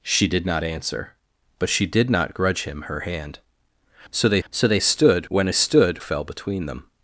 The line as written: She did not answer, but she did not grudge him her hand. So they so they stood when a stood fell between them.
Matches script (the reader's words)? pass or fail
pass